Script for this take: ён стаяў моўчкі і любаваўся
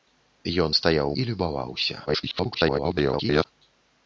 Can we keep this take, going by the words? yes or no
no